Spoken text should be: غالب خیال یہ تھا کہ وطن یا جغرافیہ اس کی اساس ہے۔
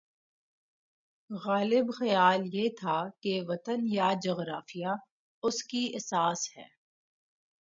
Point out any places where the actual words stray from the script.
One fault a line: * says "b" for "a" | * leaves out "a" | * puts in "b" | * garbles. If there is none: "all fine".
all fine